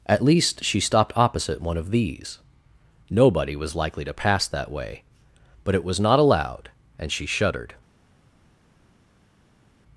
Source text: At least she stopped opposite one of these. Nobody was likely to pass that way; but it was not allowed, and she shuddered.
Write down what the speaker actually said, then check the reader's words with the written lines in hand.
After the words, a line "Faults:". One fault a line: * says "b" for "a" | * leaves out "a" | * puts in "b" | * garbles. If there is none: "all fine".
At least she stopped opposite one of these. Nobody was likely to pass that way; but it was not allowed, and she shuddered.
Faults:
all fine